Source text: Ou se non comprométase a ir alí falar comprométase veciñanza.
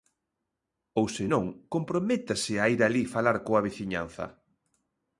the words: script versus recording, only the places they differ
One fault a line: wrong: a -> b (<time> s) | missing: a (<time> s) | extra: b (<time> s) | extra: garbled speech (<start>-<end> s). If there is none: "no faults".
wrong: comprométase -> coa (3.5 s)